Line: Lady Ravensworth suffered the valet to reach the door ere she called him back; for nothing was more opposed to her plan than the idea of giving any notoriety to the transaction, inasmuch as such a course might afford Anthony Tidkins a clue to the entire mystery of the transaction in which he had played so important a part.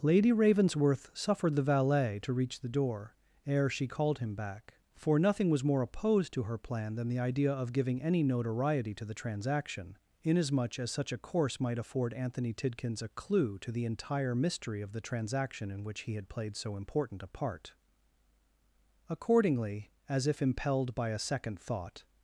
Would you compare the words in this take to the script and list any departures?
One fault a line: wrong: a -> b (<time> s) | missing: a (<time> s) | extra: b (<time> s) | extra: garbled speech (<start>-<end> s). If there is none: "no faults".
extra: Accordingly as if impelled by a second thought (19.1 s)